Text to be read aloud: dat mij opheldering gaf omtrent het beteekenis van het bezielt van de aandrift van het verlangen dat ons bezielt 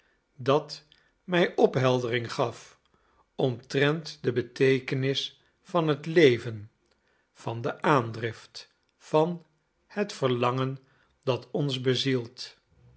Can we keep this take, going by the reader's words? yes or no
no